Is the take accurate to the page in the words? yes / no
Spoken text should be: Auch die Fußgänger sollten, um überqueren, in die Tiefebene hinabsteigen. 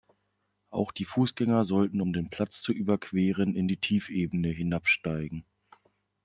no